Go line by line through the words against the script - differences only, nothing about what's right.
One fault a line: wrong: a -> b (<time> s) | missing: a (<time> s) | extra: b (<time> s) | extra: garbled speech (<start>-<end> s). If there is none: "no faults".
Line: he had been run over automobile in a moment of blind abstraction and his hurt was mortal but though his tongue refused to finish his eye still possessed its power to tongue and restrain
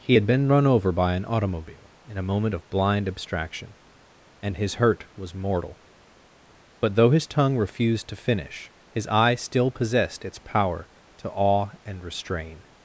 extra: by an (0.9 s)
wrong: tongue -> awe (11.3 s)